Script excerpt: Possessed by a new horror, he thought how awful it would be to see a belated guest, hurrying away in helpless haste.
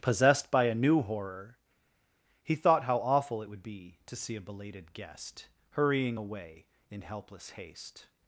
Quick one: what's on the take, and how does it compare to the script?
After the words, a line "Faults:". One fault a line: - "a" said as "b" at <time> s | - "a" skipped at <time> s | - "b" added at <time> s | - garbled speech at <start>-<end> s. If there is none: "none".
Possessed by a new horror, he thought how awful it would be to see a belated guest, hurrying away in helpless haste.
Faults:
none